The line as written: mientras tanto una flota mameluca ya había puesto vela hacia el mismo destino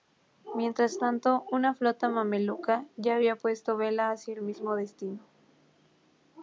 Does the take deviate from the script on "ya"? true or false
false